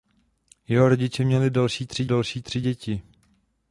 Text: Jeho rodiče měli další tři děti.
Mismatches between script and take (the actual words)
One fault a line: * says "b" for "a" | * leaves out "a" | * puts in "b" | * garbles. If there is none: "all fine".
* puts in "další tři"